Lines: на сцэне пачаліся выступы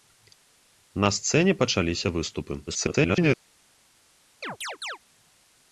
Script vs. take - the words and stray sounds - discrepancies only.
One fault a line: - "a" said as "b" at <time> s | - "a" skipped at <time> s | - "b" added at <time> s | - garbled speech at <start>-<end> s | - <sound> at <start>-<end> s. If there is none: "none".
- garbled speech at 2.7-3.4 s
- chirp at 4.4-5.0 s